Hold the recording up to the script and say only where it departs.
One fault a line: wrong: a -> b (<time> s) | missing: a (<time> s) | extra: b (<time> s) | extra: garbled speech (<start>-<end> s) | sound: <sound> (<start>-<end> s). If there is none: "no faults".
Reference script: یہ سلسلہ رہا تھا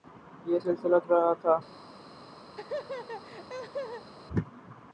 sound: laugh (2.5-4.1 s)